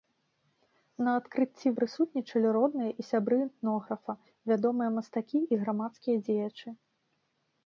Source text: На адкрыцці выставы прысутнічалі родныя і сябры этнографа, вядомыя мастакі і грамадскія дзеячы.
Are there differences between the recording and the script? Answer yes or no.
yes